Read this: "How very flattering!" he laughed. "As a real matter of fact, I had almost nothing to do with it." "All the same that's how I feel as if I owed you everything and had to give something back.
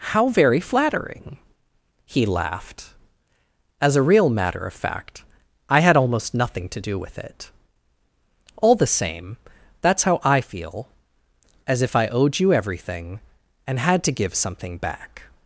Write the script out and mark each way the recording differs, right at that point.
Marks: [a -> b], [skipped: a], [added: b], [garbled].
"How very flattering!" he laughed. "As a real matter of fact, I had almost nothing to do with it." "All the same that's how I feel as if I owed you everything and had to give something back.